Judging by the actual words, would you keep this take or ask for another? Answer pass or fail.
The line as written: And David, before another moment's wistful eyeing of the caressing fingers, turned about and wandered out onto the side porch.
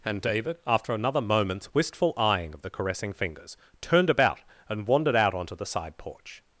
fail